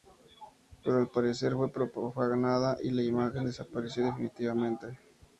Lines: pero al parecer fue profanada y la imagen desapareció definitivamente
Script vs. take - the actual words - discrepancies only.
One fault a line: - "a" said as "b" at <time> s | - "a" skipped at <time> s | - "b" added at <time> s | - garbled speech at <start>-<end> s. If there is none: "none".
none